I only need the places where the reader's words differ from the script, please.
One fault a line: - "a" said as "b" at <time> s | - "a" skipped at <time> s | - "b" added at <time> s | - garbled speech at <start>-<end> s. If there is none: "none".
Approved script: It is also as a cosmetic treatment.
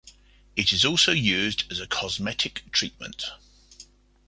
- "used" added at 1.1 s